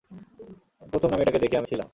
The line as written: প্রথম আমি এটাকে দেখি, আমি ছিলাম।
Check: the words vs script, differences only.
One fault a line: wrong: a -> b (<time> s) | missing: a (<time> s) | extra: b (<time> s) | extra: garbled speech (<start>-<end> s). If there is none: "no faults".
no faults